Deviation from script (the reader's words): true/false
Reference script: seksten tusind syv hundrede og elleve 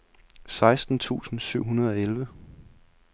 false